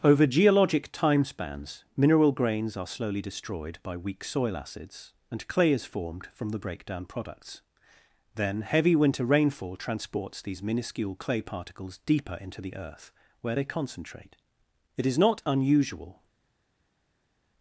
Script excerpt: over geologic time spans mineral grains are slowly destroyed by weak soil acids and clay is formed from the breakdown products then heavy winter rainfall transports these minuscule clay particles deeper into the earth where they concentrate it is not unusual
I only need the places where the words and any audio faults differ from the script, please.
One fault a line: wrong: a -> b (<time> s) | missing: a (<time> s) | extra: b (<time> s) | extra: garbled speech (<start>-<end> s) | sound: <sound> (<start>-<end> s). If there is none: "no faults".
no faults